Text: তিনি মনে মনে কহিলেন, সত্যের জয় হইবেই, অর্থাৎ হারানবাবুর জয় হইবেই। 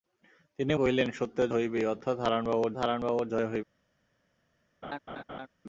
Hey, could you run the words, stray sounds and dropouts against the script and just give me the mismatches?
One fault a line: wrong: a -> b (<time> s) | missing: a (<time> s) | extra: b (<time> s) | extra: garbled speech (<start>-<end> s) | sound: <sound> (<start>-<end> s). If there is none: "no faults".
missing: মনে মনে (0.7 s)
missing: জয় (1.5 s)
extra: হারানবাবুর (2.8 s)
sound: laugh (4.8-5.5 s)